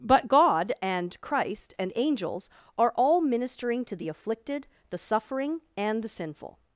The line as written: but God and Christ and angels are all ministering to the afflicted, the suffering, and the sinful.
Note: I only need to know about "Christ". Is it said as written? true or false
true